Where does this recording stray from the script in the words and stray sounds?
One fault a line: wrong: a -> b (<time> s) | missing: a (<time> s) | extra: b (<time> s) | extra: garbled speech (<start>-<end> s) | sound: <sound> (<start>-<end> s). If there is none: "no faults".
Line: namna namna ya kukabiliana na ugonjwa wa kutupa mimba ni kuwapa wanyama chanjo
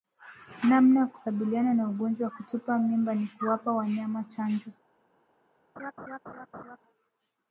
missing: namna (1.0 s)
sound: laugh (5.8-6.8 s)